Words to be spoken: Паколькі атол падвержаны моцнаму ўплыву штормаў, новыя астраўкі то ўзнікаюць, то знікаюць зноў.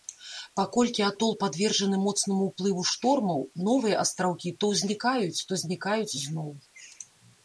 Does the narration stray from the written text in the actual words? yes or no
no